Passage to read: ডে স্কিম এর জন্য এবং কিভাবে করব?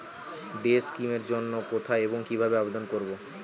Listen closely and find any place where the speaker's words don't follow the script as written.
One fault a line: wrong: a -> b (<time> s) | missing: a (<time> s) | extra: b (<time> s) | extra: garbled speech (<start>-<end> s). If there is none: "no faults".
extra: কোথায় (1.7 s)
extra: আবেদন (2.6 s)